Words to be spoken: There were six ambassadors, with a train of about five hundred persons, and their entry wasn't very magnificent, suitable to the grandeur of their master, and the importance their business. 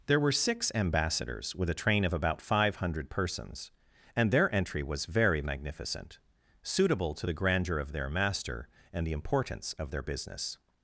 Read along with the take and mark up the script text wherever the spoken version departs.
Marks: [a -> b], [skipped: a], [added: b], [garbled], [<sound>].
There were six ambassadors, with a train of about five hundred persons, and their entry [wasn't -> was] very magnificent, suitable to the grandeur of their master, and the importance [added: of] their business.